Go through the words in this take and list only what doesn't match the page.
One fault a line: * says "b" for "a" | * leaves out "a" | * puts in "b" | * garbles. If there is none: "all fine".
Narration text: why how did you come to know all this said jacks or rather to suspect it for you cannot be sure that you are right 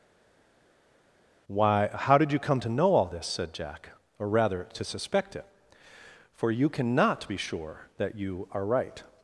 * says "jack" for "jacks"